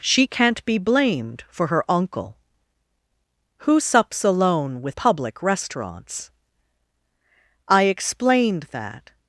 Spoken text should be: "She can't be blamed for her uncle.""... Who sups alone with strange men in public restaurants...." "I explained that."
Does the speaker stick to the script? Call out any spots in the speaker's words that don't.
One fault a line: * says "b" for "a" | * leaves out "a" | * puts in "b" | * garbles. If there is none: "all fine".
* leaves out "strange men in"